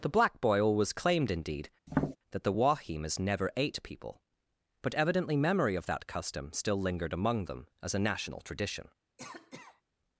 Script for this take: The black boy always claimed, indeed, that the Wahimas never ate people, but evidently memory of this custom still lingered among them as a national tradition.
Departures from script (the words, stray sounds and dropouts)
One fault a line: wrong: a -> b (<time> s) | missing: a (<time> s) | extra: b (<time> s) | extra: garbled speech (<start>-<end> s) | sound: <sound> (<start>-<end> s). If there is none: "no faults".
sound: tap (1.9-2.2 s)
wrong: this -> that (5.9 s)
sound: cough (9.2-9.8 s)